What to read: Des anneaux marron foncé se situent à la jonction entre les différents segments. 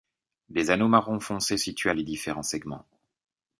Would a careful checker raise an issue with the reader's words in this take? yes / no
yes